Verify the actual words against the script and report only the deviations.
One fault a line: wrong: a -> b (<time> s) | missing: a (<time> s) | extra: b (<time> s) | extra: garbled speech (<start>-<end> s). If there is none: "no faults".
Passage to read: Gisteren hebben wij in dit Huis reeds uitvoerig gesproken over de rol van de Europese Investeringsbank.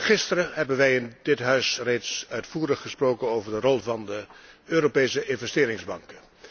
no faults